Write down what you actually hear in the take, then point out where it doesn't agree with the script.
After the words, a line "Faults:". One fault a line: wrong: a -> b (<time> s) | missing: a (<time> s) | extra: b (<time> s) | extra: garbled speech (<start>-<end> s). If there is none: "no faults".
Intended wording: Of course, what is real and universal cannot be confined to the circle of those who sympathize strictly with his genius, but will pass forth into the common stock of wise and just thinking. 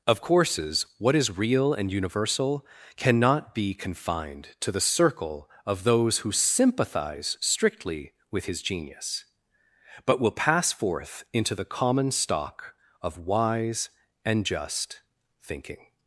Of courses, what is real and universal cannot be confined to the circle of those who sympathize strictly with his genius, but will pass forth into the common stock of wise and just thinking.
Faults:
wrong: course -> courses (0.2 s)